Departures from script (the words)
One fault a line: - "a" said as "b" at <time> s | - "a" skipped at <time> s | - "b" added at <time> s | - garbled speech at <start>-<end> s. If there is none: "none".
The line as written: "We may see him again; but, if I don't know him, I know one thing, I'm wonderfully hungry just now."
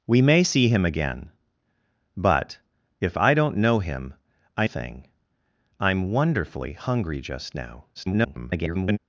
- "know one" skipped at 4.7 s
- garbled speech at 7.9-9.0 s